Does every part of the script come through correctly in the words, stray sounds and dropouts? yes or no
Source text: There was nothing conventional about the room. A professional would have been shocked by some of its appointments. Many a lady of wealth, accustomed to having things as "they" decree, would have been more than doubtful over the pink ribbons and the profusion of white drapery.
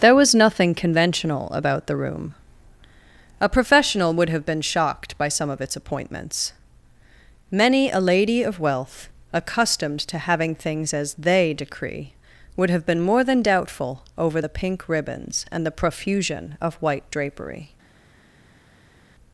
yes